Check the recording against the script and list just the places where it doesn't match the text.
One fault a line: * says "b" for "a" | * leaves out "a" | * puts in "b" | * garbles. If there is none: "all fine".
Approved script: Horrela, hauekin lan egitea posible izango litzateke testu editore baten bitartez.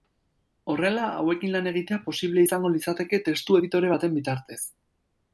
all fine